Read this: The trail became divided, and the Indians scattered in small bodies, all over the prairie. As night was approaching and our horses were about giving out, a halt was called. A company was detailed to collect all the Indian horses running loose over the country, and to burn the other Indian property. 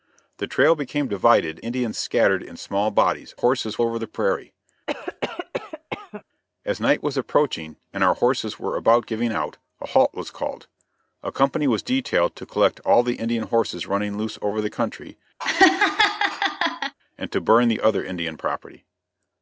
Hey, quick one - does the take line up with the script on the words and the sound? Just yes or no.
no